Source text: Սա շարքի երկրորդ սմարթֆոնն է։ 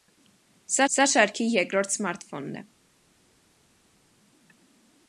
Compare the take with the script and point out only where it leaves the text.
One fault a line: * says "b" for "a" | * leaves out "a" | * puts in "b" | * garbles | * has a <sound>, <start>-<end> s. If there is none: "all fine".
* puts in "սա"